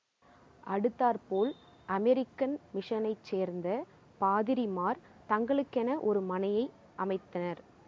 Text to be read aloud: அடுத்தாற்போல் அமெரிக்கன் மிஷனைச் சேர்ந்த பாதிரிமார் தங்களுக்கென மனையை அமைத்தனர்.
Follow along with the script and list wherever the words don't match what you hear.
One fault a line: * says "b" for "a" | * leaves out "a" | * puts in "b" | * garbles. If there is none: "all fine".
* puts in "ஒரு"